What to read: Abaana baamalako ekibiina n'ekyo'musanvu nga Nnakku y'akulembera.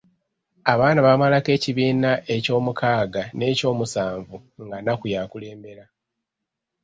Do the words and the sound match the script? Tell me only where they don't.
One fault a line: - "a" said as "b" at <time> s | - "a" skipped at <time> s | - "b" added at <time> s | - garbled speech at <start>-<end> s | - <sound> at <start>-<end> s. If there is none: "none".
- "eky'omukaaga" added at 2.4 s